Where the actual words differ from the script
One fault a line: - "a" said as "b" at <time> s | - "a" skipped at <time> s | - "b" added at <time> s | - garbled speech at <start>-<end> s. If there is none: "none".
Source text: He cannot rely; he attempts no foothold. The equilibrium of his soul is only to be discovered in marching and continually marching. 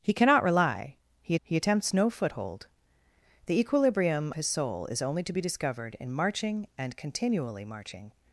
- "he" added at 1.4 s
- "of" skipped at 4.3 s